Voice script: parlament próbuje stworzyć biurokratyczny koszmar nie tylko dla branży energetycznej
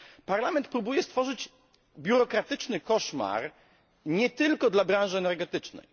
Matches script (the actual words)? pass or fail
pass